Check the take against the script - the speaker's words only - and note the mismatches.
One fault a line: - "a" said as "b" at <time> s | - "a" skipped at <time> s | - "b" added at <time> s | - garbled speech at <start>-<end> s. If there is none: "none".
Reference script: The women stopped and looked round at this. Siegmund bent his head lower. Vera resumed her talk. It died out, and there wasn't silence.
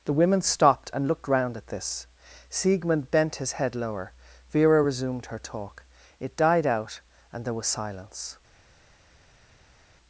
- "wasn't" said as "was" at 7.5 s